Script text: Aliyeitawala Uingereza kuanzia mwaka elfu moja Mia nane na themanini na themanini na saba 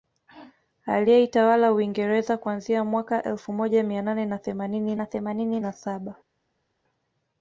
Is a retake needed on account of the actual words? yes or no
no